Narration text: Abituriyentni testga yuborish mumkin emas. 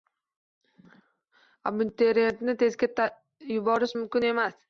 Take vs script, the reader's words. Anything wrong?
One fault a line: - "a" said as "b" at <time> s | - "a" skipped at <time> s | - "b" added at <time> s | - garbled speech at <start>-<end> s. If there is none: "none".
none